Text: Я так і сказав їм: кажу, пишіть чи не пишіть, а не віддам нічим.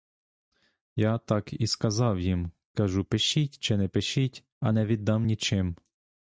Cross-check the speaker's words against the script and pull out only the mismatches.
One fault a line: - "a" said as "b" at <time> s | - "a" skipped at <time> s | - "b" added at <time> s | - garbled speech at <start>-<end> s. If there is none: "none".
none